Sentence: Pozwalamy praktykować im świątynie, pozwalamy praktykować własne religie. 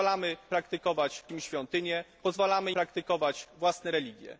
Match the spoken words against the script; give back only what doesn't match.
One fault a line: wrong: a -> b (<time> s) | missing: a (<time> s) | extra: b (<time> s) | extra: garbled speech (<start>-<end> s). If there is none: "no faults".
no faults